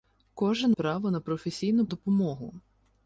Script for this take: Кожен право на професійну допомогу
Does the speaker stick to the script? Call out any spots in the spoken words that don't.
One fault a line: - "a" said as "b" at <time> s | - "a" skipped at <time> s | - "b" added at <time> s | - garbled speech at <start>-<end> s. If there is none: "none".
none